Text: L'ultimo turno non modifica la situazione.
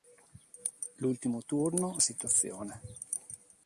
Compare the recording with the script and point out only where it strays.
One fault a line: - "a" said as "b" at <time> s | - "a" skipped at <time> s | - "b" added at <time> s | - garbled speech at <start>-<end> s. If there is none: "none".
- "non modifica la" skipped at 2.0 s